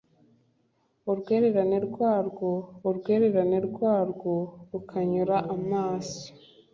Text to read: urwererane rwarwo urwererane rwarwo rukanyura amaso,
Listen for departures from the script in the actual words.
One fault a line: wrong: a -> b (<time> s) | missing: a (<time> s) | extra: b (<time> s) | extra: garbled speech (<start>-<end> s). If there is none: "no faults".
no faults